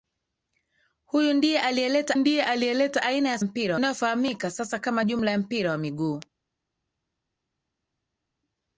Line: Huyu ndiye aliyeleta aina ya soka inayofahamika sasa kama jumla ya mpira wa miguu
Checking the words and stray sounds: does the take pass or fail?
fail